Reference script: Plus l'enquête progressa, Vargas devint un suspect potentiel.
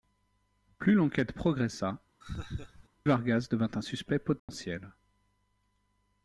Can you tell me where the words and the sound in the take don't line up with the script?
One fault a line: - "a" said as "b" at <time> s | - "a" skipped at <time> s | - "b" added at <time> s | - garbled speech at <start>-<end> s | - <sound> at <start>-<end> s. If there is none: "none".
- laugh at 2.2-2.9 s
- dropout at 4.4-4.5 s